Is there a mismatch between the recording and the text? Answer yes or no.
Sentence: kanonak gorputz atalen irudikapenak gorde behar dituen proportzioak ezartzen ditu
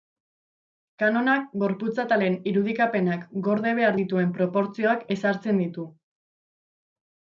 no